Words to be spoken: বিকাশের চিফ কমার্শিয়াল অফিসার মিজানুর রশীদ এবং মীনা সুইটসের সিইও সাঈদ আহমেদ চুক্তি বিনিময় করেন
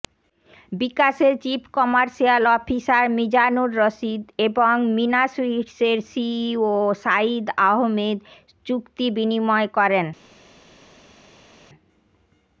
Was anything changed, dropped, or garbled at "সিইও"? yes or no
no